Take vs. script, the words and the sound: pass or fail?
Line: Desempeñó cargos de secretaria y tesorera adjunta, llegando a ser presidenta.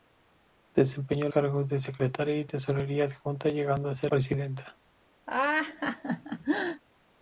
fail